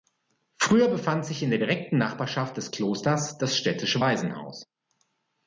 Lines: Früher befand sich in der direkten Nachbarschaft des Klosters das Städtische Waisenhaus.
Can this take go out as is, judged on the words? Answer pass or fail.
pass